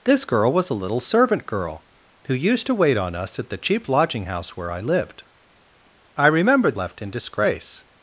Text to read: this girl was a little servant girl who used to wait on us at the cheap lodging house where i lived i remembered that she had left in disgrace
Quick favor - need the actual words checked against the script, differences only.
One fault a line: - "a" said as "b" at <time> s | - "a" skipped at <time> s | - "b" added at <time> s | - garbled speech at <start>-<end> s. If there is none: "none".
- "that she had" skipped at 6.7 s